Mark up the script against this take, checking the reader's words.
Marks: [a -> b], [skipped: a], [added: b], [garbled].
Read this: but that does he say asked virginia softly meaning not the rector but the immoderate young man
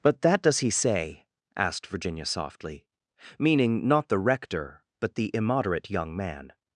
but that does he say asked virginia softly meaning not the rector but the immoderate young man